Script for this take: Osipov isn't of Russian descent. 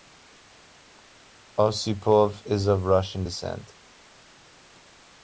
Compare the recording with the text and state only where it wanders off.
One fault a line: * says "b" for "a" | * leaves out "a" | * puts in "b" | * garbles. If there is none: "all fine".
* says "is" for "isn't"